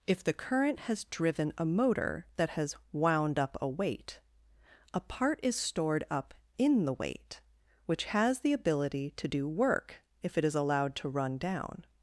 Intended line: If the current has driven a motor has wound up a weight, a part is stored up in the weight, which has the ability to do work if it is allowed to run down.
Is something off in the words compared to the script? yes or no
yes